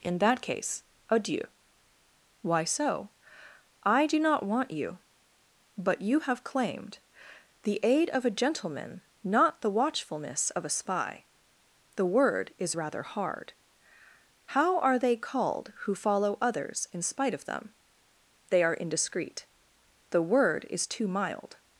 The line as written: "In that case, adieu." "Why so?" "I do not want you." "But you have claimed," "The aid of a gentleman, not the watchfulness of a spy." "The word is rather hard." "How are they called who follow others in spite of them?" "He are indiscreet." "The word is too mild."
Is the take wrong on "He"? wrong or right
wrong